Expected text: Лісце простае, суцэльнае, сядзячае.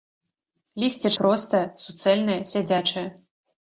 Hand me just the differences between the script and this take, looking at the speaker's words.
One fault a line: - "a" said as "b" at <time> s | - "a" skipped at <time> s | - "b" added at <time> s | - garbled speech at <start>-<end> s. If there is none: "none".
none